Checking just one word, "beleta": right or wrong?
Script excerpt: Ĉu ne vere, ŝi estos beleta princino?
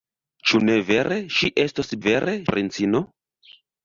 wrong